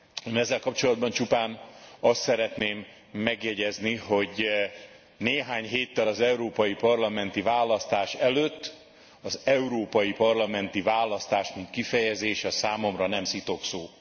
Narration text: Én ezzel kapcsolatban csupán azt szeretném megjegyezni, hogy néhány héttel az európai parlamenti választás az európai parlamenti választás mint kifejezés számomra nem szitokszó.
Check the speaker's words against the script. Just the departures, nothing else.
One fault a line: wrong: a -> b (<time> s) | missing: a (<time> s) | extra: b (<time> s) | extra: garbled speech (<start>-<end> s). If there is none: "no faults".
extra: előtt (8.1 s)